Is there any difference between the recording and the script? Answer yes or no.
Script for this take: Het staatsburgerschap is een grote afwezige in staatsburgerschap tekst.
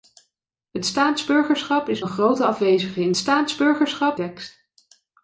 no